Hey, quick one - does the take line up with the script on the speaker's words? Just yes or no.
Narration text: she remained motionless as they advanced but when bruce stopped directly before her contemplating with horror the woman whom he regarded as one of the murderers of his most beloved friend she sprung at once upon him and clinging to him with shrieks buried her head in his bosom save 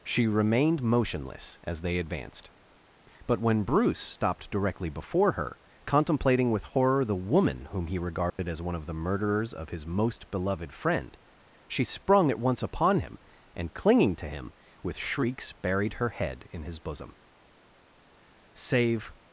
yes